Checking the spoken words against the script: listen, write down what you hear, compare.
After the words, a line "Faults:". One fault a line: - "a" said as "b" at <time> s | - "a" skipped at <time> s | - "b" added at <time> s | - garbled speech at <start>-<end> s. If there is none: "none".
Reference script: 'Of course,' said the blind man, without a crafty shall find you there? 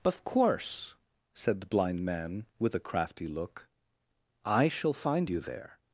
'Of course,' said the blind man, with a crafty look, 'I shall find you there?
Faults:
- "without" said as "with" at 2.6 s
- "look I" added at 3.3 s